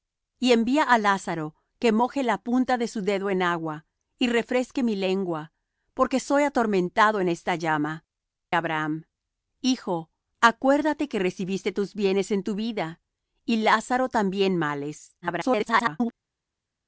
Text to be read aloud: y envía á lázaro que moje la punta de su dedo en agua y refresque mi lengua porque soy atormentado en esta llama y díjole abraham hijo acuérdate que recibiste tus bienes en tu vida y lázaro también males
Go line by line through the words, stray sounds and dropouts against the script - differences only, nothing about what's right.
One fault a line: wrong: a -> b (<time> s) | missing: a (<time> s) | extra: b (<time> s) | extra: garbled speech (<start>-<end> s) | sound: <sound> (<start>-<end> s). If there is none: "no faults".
missing: y díjole (8.1 s)
extra: garbled speech (15.2-16.1 s)